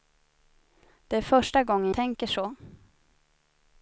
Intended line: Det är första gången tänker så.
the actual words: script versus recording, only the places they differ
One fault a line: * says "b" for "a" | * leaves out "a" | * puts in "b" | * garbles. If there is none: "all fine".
all fine